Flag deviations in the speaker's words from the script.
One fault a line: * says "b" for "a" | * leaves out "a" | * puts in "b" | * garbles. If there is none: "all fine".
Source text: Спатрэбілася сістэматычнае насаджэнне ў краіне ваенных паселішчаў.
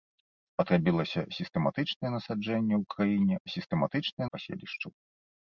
* says "сістэматычнае" for "ваенных"